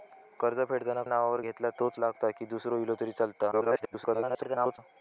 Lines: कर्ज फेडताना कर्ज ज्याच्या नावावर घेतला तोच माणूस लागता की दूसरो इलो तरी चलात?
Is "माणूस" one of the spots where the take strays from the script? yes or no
yes